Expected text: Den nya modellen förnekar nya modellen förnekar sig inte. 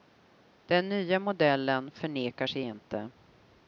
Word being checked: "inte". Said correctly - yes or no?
yes